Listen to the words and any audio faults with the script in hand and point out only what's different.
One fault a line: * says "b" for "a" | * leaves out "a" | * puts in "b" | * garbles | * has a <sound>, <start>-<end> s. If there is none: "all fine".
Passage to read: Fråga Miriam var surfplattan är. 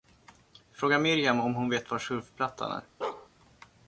* puts in "om hon vet"
* has a bark, 3.0-3.3 s